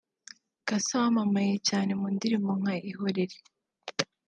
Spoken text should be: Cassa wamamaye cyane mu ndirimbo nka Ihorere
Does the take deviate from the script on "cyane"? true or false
false